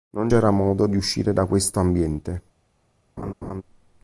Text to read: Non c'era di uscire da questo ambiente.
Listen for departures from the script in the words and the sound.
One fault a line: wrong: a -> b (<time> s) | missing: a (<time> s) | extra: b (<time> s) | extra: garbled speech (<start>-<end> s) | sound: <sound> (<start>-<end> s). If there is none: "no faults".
extra: modo (0.5 s)
sound: laugh (3.2-3.6 s)